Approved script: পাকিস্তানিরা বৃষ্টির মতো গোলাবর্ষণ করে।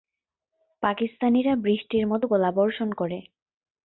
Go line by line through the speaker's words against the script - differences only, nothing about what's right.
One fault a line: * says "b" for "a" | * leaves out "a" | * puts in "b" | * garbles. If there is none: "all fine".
all fine